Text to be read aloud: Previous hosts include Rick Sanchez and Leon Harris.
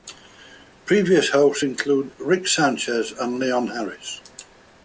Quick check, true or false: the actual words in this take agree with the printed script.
true